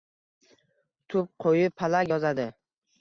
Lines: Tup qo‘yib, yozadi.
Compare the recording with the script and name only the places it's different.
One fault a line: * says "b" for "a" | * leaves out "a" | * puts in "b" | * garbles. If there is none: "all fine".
* puts in "palak"